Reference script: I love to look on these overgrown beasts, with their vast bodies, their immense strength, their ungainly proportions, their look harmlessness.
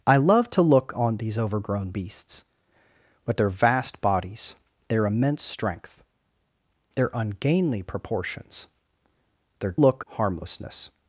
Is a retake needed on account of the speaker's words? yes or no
no